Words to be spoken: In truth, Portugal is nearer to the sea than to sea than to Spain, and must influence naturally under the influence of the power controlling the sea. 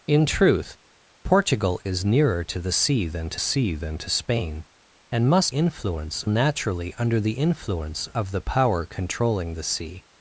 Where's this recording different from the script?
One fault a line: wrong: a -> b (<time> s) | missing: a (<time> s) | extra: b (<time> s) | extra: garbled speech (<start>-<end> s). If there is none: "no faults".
no faults